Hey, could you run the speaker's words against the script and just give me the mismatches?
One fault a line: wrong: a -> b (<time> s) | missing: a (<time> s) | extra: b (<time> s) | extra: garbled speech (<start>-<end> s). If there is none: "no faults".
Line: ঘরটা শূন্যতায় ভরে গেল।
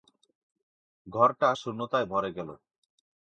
no faults